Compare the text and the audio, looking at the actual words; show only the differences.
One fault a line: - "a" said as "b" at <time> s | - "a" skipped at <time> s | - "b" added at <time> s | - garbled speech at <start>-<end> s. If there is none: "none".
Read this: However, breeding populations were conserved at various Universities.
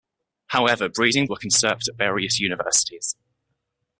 - "populations" skipped at 1.3 s